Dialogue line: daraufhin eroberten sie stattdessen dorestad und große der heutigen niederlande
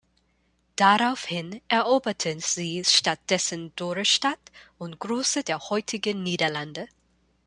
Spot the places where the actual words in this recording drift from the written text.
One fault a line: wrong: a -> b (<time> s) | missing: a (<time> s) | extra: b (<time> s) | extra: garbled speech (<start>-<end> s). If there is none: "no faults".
no faults